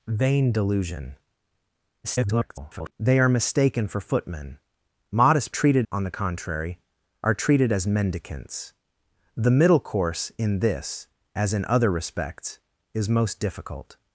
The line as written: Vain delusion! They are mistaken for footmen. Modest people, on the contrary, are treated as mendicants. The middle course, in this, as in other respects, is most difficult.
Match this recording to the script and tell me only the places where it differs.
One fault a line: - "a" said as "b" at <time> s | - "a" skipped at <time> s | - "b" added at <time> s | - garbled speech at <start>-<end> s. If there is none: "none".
- garbled speech at 2.0-2.9 s
- "people" said as "treated" at 5.5 s